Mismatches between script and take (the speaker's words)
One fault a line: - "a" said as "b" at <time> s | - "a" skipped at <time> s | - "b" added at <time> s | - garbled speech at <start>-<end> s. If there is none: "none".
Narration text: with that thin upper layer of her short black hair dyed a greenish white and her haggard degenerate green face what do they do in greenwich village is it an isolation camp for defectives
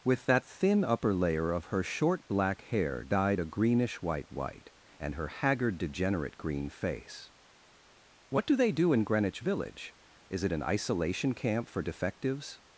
- "white" added at 4.3 s